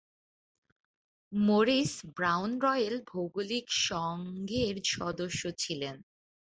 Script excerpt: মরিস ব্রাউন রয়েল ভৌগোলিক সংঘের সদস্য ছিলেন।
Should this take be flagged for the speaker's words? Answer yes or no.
no